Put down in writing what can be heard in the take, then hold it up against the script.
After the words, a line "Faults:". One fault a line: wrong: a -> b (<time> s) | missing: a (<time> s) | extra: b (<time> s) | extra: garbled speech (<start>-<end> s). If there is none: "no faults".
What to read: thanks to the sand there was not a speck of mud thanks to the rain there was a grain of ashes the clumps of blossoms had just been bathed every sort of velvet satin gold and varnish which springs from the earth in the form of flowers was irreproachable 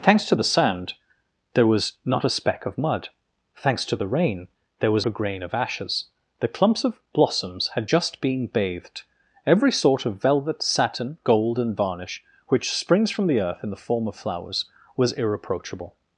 thanks to the sand there was not a speck of mud thanks to the rain there was a grain of ashes the clumps of blossoms had just been bathed every sort of velvet satin gold and varnish which springs from the earth in the form of flowers was irreproachable
Faults:
no faults